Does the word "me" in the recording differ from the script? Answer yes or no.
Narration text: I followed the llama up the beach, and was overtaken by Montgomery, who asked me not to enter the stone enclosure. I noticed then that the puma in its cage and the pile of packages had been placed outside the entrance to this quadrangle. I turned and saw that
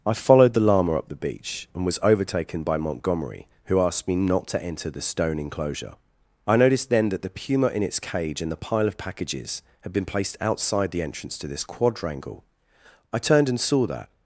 no